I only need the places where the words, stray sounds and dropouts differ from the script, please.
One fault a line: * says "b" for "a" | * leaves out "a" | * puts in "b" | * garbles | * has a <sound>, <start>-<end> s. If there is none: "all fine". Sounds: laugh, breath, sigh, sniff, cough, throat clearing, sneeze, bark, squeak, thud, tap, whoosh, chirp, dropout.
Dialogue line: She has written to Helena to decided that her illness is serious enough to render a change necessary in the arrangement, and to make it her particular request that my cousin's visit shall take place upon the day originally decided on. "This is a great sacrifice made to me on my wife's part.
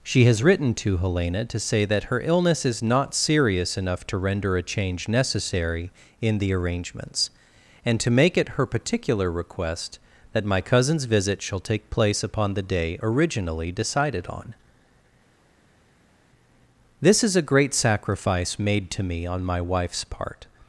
* says "say" for "decided"
* puts in "not"
* says "arrangements" for "arrangement"